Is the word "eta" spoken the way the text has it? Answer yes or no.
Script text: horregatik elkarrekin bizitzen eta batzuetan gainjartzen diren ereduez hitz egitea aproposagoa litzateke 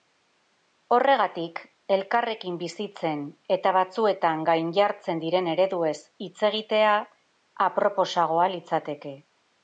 yes